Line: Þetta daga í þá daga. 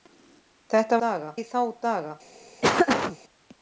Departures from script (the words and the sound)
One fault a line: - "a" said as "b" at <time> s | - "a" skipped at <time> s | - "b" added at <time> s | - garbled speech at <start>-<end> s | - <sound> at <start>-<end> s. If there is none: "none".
- laugh at 2.6-3.2 s